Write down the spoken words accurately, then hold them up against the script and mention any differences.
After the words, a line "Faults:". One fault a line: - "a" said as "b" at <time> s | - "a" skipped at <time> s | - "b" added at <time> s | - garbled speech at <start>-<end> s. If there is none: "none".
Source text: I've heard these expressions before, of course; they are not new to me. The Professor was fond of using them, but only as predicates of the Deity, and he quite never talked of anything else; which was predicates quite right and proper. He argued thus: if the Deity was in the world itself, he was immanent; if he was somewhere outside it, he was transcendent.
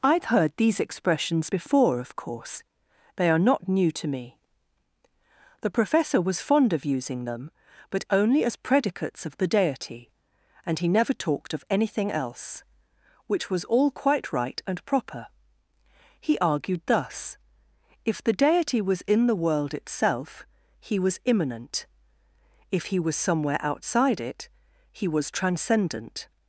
I've heard these expressions before, of course; they are not new to me. The Professor was fond of using them, but only as predicates of the Deity, and he never talked of anything else; which was all quite right and proper. He argued thus: if the Deity was in the world itself, he was immanent; if he was somewhere outside it, he was transcendent.
Faults:
- "quite" skipped at 10.9 s
- "predicates" said as "all" at 13.6 s